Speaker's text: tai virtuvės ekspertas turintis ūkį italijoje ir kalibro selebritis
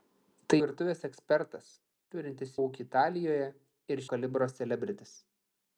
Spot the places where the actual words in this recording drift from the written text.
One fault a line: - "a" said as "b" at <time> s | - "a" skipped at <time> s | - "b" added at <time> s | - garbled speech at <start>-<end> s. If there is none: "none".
none